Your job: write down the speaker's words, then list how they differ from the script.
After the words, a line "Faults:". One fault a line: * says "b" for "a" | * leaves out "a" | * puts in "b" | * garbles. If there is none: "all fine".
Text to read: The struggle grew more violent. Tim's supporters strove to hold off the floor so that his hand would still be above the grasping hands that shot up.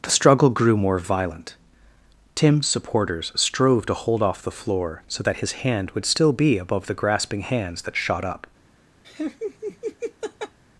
The struggle grew more violent. Tim's supporters strove to hold off the floor so that his hand would still be above the grasping hands that shot up.
Faults:
all fine